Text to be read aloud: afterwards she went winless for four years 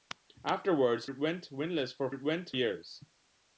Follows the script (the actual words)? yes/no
no